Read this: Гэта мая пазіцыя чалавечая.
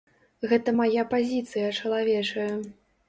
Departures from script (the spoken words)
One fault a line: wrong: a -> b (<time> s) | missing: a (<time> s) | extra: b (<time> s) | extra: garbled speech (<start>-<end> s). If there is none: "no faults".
no faults